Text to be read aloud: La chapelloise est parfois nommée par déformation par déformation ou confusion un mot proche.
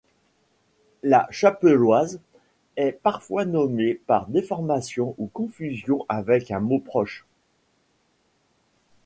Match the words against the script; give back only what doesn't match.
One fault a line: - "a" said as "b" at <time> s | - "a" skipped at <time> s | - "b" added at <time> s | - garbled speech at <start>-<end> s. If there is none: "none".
- "par déformation" skipped at 5.1 s
- "avec" added at 6.1 s